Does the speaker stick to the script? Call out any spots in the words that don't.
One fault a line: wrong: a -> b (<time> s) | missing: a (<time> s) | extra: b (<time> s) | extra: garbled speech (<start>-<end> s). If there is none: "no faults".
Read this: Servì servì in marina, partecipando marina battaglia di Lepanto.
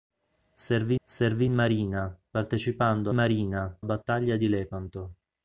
no faults